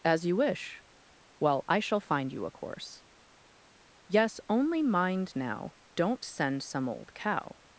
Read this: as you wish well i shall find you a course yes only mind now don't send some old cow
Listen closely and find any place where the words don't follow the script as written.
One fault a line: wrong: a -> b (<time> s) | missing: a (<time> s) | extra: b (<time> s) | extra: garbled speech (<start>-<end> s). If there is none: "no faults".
no faults